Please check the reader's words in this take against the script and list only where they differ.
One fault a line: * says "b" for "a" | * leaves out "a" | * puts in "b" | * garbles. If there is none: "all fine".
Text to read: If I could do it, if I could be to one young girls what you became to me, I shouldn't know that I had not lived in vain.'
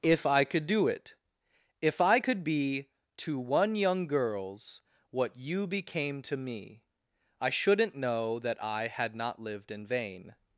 all fine